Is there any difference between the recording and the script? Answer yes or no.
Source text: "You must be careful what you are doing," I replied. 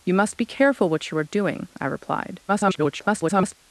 yes